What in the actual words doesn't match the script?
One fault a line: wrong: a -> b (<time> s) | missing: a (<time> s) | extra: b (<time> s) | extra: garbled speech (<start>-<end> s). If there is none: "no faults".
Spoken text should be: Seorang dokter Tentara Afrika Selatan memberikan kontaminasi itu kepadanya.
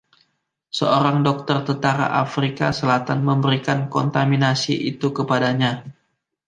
no faults